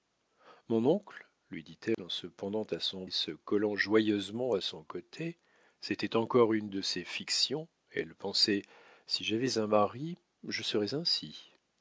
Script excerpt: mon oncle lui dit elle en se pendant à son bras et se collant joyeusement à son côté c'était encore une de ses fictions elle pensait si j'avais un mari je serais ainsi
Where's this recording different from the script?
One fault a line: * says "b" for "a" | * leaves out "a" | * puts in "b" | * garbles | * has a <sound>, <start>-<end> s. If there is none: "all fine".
* has a dropout, 1.9-2.0 s
* leaves out "bras"